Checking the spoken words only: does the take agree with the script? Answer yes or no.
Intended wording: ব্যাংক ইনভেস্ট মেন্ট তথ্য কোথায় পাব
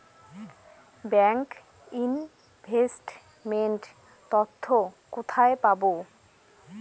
yes